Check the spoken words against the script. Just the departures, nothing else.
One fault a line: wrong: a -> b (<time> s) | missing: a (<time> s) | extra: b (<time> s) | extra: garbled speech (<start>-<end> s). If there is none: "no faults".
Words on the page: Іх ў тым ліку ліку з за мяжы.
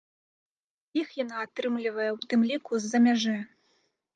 extra: яна атрымлівае (1.2 s)
missing: ліку (2.7 s)